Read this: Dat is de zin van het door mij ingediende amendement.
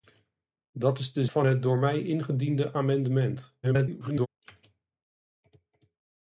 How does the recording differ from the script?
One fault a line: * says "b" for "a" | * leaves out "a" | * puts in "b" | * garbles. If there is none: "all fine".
* leaves out "zin"
* garbles